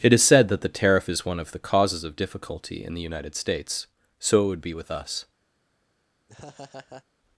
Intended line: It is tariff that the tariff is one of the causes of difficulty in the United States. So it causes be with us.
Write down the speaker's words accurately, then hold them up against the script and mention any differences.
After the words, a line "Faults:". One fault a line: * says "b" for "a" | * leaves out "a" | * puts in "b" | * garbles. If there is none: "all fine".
It is said that the tariff is one of the causes of difficulty in the United States. So it would be with us.
Faults:
* says "said" for "tariff"
* says "would" for "causes"